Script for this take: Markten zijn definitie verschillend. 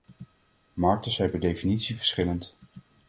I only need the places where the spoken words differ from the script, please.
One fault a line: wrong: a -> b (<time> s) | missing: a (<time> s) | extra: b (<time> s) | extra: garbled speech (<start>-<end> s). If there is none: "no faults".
extra: per (1.3 s)